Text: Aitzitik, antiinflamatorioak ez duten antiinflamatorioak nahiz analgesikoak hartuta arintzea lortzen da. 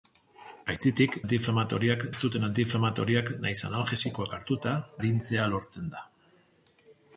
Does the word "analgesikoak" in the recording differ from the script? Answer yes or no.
no